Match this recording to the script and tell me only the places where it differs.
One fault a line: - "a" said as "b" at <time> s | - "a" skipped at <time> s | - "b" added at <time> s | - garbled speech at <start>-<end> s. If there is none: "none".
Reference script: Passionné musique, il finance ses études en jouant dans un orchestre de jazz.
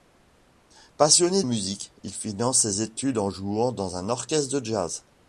none